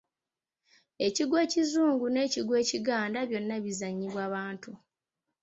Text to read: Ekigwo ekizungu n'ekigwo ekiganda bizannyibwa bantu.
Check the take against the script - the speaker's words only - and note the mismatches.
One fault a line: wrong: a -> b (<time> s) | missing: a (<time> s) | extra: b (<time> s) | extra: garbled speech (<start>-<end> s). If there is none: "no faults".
extra: byonna (3.3 s)